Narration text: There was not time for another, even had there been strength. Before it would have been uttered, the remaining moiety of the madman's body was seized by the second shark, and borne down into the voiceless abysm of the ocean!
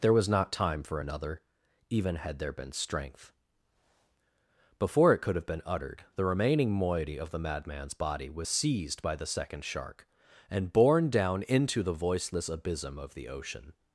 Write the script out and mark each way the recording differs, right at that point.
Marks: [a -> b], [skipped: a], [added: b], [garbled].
There was not time for another, even had there been strength. Before it [would -> could] have been uttered, the remaining moiety of the madman's body was seized by the second shark, and borne down into the voiceless abysm of the ocean!